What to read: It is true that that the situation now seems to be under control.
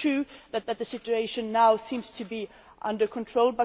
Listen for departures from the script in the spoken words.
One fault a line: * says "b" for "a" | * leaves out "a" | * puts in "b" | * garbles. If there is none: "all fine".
all fine